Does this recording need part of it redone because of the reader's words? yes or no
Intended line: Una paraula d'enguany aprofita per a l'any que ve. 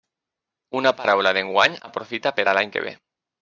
no